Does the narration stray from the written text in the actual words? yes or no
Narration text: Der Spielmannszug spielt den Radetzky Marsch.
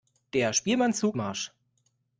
yes